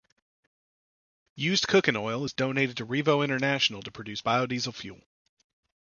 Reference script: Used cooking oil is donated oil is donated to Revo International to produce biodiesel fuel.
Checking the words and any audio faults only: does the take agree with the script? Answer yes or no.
no